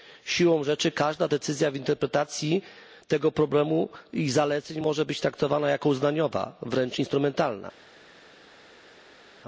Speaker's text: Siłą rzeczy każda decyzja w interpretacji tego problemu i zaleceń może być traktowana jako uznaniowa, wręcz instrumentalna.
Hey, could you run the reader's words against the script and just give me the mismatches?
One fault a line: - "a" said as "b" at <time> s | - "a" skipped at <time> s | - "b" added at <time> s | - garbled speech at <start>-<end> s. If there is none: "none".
none